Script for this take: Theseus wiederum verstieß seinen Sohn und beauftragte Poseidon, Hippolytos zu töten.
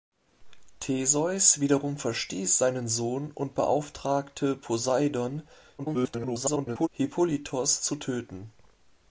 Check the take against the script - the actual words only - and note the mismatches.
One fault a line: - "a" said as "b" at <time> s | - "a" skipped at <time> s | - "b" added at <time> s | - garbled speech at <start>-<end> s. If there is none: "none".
- garbled speech at 5.8-6.9 s